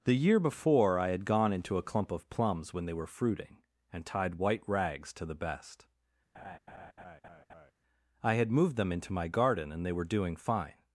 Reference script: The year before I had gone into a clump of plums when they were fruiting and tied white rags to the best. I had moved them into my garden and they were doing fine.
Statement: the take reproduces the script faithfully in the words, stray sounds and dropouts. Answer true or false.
false